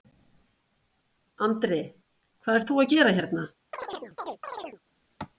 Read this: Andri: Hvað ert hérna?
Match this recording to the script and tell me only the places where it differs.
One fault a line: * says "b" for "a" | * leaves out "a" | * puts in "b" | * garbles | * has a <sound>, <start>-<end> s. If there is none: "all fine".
* puts in "þú að gera"
* has a chirp, 3.7-4.8 s